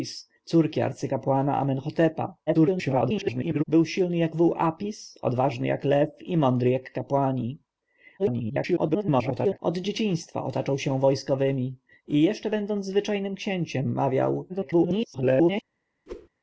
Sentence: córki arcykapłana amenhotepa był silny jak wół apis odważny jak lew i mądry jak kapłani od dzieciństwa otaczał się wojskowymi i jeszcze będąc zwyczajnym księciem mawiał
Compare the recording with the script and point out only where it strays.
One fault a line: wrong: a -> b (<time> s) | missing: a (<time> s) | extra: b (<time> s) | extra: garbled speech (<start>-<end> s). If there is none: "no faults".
extra: garbled speech (2.5-3.6 s)
extra: garbled speech (8.2-9.6 s)
extra: garbled speech (14.5-15.6 s)